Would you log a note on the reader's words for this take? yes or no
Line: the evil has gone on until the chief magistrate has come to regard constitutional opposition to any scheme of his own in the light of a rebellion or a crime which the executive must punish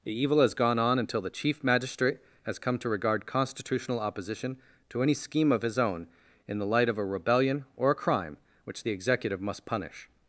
no